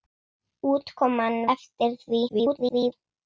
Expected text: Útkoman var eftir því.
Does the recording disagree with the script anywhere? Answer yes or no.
yes